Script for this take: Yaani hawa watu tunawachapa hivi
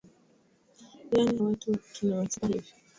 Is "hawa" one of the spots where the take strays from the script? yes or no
yes